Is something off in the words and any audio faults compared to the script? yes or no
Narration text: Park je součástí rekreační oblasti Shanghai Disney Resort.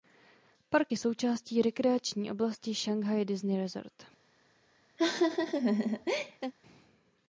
yes